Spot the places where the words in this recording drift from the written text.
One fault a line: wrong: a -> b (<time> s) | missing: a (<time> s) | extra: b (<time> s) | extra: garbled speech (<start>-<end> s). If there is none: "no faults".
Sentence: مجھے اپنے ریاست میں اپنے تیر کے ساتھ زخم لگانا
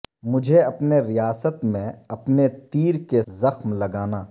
missing: ساتھ (3.2 s)